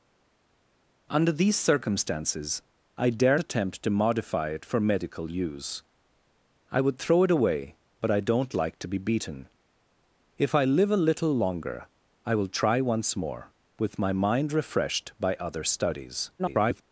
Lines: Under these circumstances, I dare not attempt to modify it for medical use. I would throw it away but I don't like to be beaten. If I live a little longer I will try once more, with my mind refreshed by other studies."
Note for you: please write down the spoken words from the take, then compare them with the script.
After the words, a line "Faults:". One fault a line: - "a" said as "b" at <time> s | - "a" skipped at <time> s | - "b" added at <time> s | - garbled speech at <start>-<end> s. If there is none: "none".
Under these circumstances, I dare attempt to modify it for medical use. I would throw it away but I don't like to be beaten. If I live a little longer I will try once more, with my mind refreshed by other studies." [garbled]
Faults:
- "not" skipped at 3.4 s
- garbled speech at 16.4-16.8 s